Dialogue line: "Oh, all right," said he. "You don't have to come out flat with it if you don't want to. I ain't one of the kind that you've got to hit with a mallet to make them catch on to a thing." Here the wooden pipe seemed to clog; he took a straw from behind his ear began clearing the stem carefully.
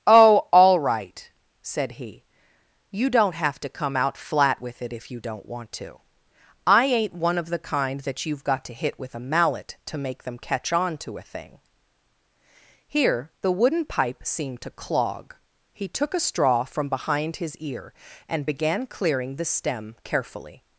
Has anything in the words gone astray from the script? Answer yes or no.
yes